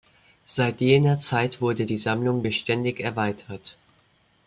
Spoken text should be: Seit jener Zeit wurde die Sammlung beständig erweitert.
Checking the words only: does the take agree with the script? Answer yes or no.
yes